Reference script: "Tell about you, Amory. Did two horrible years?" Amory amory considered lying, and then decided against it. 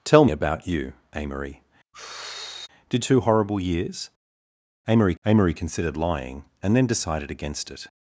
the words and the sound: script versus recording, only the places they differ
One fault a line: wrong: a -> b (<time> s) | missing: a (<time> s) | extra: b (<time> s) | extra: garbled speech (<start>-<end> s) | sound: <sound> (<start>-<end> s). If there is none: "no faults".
sound: sigh (1.9-2.7 s)